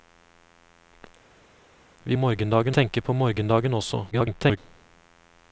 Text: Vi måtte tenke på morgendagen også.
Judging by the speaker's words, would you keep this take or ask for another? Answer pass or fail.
fail